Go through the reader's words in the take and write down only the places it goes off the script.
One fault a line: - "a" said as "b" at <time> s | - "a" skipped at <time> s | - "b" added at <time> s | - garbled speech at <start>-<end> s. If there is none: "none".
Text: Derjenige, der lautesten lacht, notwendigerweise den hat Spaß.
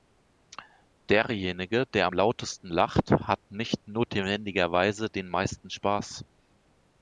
- "am" added at 2.0 s
- "hat nicht" added at 3.1 s
- "hat" said as "meisten" at 5.3 s